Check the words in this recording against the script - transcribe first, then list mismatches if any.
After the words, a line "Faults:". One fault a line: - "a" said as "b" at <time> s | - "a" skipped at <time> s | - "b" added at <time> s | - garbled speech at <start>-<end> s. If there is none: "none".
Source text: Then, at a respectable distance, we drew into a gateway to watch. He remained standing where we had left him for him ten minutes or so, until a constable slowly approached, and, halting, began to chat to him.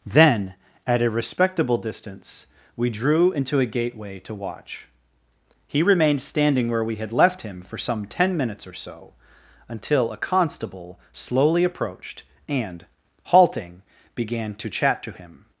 Then, at a respectable distance, we drew into a gateway to watch. He remained standing where we had left him for some ten minutes or so, until a constable slowly approached, and, halting, began to chat to him.
Faults:
- "him" said as "some" at 7.8 s